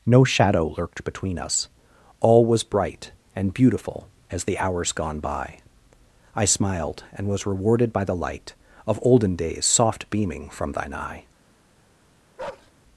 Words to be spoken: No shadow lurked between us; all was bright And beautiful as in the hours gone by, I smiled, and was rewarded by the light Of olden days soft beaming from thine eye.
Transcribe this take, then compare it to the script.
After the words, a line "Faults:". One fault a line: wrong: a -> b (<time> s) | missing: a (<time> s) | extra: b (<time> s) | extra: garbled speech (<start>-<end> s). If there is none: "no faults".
No shadow lurked between us; all was bright And beautiful as the hours gone by, I smiled, and was rewarded by the light Of olden days soft beaming from thine eye.
Faults:
missing: in (4.5 s)